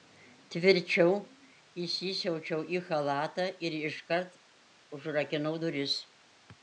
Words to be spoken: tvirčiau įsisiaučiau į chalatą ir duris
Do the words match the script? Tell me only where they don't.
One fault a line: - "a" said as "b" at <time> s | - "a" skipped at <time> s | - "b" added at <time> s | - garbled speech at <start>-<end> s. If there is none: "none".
- "iškart užrakinau" added at 3.8 s